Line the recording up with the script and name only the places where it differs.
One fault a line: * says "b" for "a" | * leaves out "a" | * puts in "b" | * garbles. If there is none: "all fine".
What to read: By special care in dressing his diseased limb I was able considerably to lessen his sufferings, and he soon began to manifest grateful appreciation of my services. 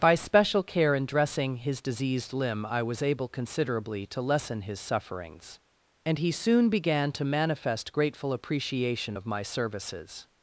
all fine